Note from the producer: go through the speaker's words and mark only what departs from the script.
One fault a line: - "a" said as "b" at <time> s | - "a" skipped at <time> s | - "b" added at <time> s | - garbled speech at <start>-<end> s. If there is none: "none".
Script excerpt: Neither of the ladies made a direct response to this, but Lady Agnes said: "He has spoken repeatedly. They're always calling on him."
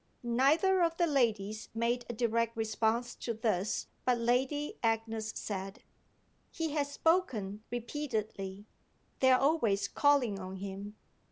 none